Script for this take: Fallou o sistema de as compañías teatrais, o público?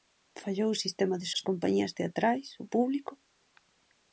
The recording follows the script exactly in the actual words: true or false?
true